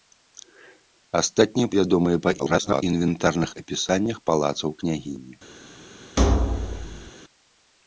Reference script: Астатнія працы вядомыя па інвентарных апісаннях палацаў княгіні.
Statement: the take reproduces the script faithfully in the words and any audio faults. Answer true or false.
false